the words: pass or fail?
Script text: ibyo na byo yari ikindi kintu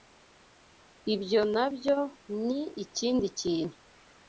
fail